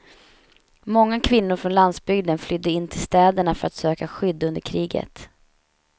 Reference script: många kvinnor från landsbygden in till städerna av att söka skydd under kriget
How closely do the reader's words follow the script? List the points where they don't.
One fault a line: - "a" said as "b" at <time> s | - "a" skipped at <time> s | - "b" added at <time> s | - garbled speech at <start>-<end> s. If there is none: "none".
- "flydde" added at 2.4 s
- "av" said as "för" at 3.5 s